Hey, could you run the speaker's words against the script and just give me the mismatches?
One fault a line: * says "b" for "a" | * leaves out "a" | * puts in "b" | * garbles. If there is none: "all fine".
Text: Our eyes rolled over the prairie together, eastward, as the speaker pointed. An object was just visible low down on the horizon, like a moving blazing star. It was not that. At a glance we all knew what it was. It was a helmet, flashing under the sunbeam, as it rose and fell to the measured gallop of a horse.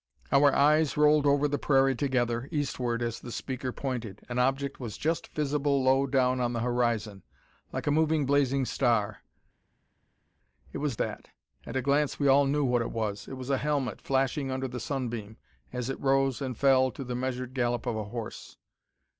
* leaves out "not"